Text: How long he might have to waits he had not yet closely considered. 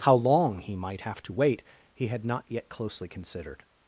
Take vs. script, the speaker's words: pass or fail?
fail